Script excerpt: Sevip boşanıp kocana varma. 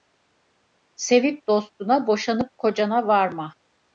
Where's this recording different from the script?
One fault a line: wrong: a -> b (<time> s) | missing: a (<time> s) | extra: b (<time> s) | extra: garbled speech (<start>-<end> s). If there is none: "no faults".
extra: dostuna (1.5 s)